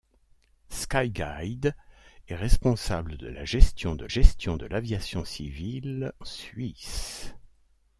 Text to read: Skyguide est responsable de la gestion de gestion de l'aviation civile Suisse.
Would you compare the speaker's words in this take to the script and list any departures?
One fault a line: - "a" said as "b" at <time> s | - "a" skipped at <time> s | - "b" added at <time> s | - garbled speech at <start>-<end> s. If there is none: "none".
none